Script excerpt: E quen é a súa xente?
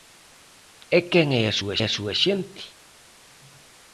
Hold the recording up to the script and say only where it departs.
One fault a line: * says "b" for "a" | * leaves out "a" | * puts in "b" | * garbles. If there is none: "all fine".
* puts in "a súa"